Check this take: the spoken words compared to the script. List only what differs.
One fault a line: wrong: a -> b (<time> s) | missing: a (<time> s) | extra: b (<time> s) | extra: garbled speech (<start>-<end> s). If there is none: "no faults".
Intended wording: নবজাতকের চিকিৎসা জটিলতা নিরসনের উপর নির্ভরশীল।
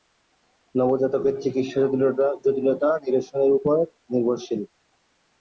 no faults